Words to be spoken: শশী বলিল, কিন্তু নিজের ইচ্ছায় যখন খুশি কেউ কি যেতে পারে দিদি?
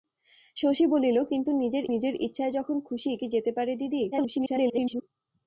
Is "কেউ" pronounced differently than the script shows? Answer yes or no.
yes